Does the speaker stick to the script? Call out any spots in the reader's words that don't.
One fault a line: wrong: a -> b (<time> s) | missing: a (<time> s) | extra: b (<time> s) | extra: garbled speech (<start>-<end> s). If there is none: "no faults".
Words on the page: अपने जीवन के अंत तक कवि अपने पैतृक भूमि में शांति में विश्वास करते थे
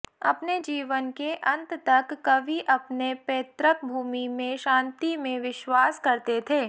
no faults